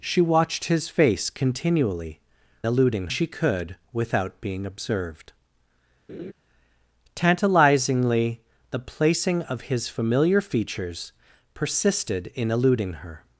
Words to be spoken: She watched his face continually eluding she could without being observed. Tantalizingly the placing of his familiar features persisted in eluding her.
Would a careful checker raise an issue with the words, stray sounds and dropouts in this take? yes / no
yes